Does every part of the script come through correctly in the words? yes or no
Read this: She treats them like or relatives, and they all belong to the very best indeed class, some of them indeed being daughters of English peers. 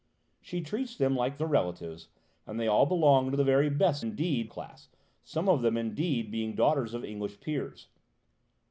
yes